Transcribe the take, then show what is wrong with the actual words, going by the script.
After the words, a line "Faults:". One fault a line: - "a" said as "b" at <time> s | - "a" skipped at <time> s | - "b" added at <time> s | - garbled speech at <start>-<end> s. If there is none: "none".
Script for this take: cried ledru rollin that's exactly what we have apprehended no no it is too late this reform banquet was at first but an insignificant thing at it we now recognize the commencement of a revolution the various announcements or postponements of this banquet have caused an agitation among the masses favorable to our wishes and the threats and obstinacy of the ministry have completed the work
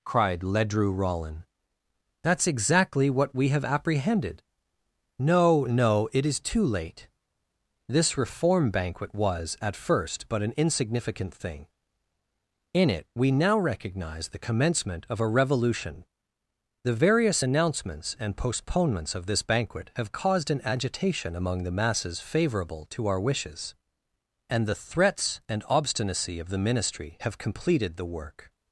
cried ledru rollin that's exactly what we have apprehended no no it is too late this reform banquet was at first but an insignificant thing in it we now recognize the commencement of a revolution the various announcements and postponements of this banquet have caused an agitation among the masses favorable to our wishes and the threats and obstinacy of the ministry have completed the work
Faults:
- "at" said as "in" at 12.7 s
- "or" said as "and" at 18.2 s